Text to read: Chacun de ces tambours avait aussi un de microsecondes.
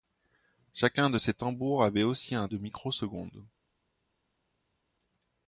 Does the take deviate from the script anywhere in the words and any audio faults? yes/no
no